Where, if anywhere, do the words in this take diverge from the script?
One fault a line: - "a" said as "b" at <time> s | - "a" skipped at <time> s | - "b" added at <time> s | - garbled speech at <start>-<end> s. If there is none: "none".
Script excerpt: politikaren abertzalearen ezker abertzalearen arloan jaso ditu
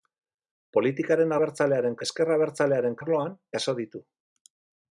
none